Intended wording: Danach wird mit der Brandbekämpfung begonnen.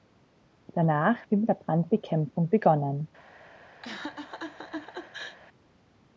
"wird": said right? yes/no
yes